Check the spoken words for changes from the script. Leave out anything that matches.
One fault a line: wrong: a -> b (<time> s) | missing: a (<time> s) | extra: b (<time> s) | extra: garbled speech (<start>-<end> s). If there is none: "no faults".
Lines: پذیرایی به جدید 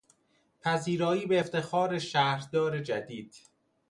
extra: افتخار شهردار (1.4 s)